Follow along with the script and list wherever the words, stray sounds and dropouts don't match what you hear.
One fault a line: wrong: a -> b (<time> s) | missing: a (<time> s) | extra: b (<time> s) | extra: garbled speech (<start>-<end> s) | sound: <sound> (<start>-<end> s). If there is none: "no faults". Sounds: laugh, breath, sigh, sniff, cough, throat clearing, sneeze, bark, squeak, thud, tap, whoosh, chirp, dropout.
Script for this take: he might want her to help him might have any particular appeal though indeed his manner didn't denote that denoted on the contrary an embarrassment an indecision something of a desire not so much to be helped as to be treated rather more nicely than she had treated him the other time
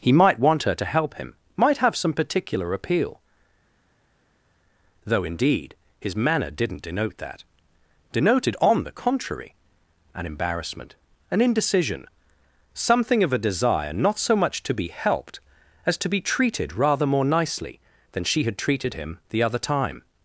wrong: any -> some (1.9 s)